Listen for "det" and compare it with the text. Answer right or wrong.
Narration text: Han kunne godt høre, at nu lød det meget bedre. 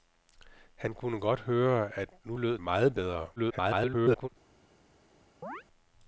wrong